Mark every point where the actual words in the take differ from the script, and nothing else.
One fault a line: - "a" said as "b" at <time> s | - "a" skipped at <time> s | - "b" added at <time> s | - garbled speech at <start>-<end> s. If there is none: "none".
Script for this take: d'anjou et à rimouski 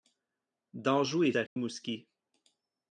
none